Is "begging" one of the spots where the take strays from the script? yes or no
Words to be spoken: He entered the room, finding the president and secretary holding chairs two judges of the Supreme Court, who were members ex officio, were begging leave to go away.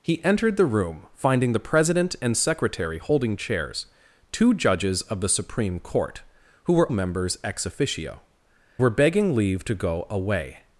no